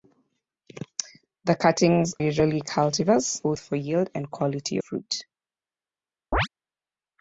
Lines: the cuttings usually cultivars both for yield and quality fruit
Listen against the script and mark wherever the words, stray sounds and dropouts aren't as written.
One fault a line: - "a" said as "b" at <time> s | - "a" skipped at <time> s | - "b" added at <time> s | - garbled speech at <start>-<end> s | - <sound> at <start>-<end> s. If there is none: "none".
- chirp at 6.3-6.5 s